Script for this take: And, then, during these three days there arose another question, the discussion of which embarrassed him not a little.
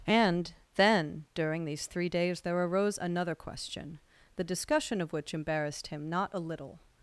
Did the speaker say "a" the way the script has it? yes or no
yes